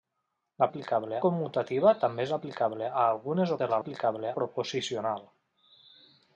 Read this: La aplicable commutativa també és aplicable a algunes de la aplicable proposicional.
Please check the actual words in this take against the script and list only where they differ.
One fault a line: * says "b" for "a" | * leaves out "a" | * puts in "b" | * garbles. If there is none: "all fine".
all fine